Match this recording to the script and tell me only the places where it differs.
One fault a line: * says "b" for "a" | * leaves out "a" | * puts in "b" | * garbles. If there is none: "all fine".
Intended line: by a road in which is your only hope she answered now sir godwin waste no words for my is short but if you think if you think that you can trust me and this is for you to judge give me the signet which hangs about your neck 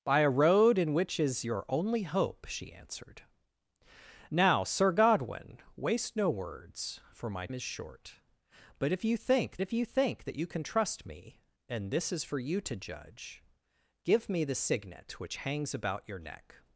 all fine